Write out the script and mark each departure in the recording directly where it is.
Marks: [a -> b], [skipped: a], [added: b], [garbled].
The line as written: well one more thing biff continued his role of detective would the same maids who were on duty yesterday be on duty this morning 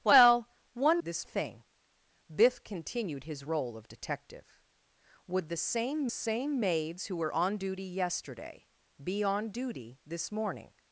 well one [more -> this] thing biff continued his role of detective would the same [added: same] maids who were on duty yesterday be on duty this morning